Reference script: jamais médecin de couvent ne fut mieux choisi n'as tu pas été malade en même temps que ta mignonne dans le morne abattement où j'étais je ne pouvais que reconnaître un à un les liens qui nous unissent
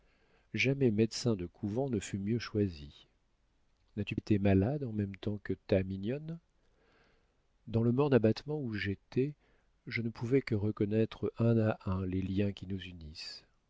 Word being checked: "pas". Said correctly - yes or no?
no